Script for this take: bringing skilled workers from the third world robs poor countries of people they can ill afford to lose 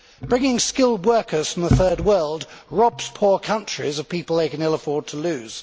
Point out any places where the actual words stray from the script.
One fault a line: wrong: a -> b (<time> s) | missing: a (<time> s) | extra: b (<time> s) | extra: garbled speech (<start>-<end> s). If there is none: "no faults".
no faults